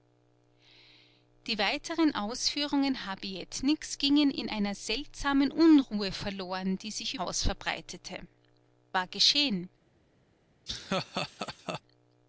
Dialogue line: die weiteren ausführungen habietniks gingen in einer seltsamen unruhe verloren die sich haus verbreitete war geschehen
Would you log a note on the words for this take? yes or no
no